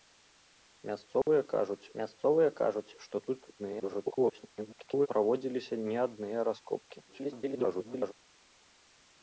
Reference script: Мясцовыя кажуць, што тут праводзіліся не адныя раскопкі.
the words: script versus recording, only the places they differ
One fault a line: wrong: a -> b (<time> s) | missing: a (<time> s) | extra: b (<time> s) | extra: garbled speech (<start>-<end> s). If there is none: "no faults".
extra: мясцовыя кажуць (2.0 s)
extra: garbled speech (3.6-5.1 s)
extra: garbled speech (7.1-8.1 s)